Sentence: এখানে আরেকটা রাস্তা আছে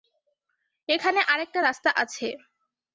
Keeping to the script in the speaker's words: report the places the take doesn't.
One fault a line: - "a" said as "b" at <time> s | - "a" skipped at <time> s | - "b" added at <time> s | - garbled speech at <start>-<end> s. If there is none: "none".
none